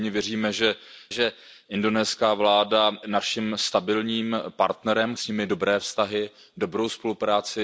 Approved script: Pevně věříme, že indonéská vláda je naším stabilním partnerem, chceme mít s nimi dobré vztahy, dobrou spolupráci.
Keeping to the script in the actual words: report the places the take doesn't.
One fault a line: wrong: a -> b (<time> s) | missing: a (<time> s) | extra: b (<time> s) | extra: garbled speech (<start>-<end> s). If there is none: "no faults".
extra: že (1.1 s)
missing: je (2.9 s)
missing: chceme mít (5.1 s)